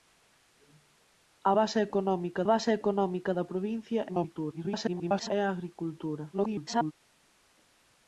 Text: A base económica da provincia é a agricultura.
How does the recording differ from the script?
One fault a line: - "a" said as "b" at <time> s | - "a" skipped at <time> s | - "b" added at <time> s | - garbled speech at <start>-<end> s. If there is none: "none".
- "base económica" added at 2.5 s
- garbled speech at 4.1-5.3 s
- garbled speech at 6.3-6.9 s